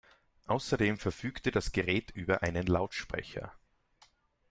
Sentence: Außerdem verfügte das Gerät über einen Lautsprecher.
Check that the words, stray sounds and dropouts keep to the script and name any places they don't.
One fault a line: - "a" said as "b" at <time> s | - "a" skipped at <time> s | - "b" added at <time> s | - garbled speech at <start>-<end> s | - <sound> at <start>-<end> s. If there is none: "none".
none